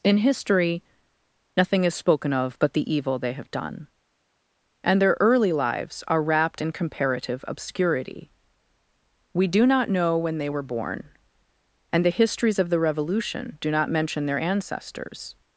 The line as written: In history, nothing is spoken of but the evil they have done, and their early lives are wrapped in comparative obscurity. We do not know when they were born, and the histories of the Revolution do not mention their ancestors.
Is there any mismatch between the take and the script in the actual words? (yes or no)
no